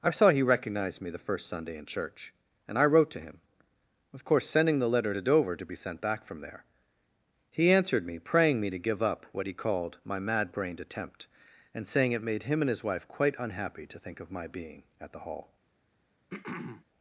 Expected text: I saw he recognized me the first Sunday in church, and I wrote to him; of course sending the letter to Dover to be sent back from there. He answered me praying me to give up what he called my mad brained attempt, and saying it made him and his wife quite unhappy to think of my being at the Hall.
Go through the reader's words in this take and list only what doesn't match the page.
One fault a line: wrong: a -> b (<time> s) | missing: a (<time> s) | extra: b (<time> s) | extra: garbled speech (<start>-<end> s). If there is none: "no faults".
no faults